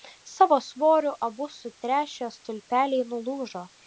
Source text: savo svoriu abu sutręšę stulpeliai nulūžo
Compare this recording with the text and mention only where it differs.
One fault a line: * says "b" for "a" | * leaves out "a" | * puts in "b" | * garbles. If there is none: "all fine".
all fine